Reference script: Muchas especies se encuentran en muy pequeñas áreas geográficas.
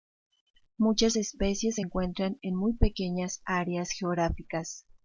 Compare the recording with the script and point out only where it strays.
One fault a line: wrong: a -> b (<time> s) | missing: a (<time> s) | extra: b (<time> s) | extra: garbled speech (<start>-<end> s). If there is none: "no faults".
no faults